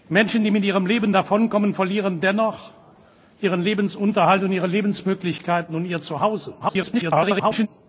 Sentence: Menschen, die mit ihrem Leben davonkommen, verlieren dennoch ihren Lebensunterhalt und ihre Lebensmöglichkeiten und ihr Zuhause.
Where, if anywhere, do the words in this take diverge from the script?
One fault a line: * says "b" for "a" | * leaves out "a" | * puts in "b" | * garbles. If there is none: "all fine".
* garbles